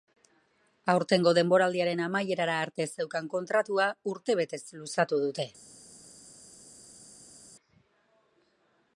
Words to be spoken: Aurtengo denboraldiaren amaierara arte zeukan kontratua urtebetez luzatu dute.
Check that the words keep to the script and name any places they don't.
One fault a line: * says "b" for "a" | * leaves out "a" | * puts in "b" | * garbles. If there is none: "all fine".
all fine